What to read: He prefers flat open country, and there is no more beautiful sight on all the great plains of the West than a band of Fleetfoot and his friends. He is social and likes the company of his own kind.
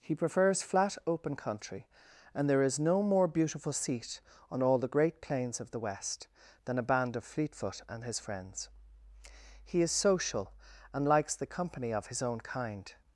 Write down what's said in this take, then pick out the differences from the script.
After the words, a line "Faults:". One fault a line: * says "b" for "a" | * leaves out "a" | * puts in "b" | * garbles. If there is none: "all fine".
He prefers flat open country, and there is no more beautiful seat on all the great plains of the West than a band of Fleetfoot and his friends. He is social and likes the company of his own kind.
Faults:
* says "seat" for "sight"